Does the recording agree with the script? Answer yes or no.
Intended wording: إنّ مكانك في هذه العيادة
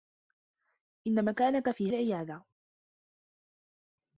no